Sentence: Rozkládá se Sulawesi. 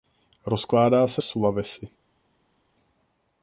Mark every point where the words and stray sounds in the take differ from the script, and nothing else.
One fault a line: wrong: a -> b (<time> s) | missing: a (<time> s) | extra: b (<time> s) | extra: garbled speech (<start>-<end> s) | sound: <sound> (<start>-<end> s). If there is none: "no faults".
no faults